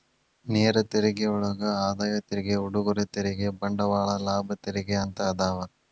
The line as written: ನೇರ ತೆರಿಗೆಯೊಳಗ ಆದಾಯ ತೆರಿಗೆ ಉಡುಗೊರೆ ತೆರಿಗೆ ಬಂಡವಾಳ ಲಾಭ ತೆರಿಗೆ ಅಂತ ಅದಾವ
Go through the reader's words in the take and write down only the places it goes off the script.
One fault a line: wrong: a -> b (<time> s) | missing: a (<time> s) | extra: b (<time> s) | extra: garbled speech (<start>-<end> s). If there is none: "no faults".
no faults